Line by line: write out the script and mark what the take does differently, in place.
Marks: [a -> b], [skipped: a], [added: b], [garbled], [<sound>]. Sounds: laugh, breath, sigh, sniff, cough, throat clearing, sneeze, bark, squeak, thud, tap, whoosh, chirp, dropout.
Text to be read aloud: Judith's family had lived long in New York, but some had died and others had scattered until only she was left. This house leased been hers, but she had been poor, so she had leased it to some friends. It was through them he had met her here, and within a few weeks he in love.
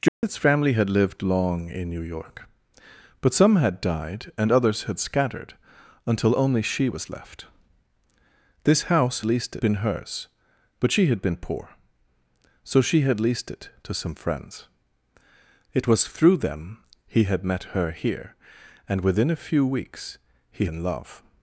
Judith's [dropout] family had lived long in New York, but some had died and others had scattered until only she was left. This house leased been hers, but she had been poor, so she had leased it to some friends. It was through them he had met her here, and within a few weeks he in love.